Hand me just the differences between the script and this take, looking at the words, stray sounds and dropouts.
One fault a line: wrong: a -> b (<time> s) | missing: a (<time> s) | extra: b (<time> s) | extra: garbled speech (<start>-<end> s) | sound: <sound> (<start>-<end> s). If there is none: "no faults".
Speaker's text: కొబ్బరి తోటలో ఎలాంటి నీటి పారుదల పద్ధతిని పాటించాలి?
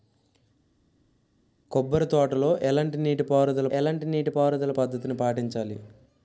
extra: ఎలాంటి నీటి పారుదల (3.7 s)